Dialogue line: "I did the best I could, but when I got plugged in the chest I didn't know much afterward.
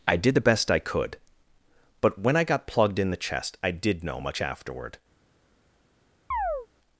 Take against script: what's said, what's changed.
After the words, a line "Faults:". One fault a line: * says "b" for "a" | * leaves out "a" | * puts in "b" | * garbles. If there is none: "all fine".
"I did the best I could, but when I got plugged in the chest I did know much afterward.
Faults:
* says "did" for "didn't"